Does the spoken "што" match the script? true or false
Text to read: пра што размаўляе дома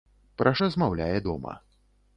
false